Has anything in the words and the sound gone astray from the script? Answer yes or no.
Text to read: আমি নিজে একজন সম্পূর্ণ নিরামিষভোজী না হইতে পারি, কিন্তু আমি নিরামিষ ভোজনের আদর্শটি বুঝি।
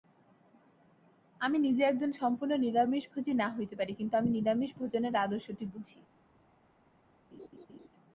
yes